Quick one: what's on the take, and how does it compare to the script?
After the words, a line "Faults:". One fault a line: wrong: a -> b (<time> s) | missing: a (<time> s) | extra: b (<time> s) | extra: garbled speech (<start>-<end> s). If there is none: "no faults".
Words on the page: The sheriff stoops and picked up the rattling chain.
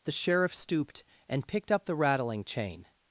The sheriff stooped and picked up the rattling chain.
Faults:
wrong: stoops -> stooped (0.6 s)